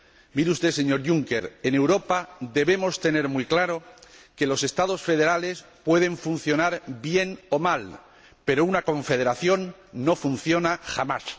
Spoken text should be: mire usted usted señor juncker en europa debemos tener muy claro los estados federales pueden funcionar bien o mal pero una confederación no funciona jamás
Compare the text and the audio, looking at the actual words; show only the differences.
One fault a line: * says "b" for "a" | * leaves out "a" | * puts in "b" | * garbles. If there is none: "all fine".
* leaves out "usted"
* puts in "que"